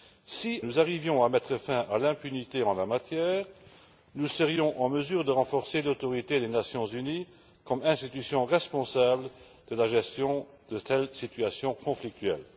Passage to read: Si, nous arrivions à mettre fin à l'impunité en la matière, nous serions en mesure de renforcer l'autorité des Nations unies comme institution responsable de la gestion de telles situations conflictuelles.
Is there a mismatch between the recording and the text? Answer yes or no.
no